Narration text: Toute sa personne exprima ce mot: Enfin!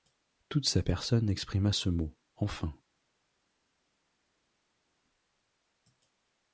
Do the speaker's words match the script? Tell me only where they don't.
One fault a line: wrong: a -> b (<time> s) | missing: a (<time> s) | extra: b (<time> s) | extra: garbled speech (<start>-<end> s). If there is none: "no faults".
no faults